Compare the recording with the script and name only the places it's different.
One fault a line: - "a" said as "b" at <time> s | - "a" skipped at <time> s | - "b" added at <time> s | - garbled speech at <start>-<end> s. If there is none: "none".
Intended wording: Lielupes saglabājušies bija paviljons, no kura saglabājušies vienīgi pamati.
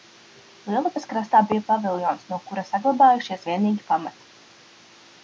- "saglabājušies" said as "krastā" at 1.1 s